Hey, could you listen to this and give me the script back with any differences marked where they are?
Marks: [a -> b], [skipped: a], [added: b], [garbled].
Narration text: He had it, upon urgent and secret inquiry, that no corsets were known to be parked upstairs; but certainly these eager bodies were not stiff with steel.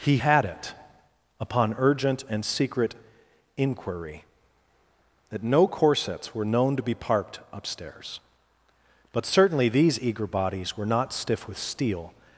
He had it, upon urgent and secret inquiry, that no corsets were known to be parked upstairs; but certainly these eager bodies were not stiff with steel.